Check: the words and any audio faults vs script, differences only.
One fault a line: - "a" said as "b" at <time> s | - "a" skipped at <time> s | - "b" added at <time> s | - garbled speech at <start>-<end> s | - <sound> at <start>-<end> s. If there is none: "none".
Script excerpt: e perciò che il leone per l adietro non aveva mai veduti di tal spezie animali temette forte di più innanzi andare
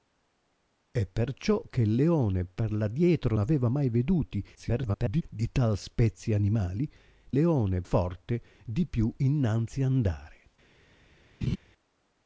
- "non" skipped at 3.4 s
- garbled speech at 4.5-5.2 s
- "temette" said as "leone" at 7.3 s
- laugh at 11.4-11.6 s